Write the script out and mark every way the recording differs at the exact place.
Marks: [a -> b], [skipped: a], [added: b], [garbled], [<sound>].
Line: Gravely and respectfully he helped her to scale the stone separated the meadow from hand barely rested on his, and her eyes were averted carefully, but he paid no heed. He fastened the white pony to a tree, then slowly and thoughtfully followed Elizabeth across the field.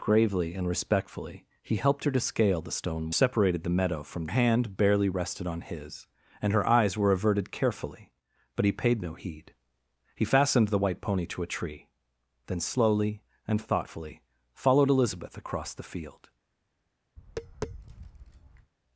Gravely and respectfully he helped her to scale the stone separated the meadow from hand barely rested on his, and her eyes were averted carefully, but he paid no heed. He fastened the white pony to a tree, then slowly and thoughtfully followed Elizabeth across the field. [tap]